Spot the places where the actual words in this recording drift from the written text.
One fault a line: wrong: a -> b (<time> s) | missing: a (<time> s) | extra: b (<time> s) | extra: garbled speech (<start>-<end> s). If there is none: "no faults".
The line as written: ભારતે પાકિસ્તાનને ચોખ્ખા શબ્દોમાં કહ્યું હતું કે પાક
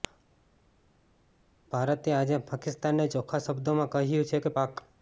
extra: આજે (2.1 s)
wrong: હતું -> છે (4.3 s)